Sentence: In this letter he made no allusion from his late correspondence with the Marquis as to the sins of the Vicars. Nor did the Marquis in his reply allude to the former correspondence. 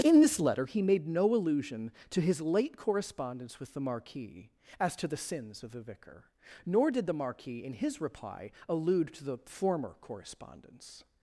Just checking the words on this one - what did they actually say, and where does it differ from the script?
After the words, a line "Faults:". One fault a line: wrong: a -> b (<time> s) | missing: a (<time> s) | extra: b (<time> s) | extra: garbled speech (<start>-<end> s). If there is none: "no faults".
In this letter he made no allusion to his late correspondence with the Marquis as to the sins of the Vicar. Nor did the Marquis in his reply allude to the former correspondence.
Faults:
wrong: from -> to (2.1 s)
wrong: Vicars -> Vicar (5.8 s)